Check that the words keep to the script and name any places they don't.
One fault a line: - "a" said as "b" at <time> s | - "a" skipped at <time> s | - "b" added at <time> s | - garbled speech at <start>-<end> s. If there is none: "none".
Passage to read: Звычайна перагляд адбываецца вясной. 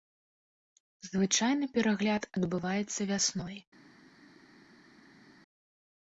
none